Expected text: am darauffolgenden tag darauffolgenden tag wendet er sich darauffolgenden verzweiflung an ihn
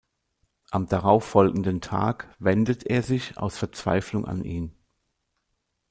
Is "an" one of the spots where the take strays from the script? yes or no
no